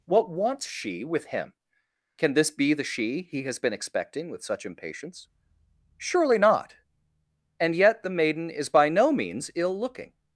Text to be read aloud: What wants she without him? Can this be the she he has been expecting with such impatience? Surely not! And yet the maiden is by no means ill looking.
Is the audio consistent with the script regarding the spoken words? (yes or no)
no